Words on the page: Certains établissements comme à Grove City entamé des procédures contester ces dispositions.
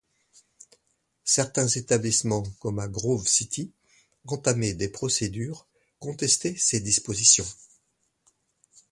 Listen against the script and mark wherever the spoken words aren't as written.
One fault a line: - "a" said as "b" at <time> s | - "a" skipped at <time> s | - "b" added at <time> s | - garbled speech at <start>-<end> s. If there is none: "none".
none